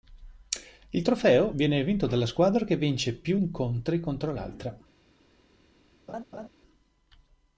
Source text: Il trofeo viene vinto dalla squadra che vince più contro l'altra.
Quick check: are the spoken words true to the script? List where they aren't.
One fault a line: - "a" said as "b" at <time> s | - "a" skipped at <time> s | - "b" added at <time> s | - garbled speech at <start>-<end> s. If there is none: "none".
- "incontri" added at 3.3 s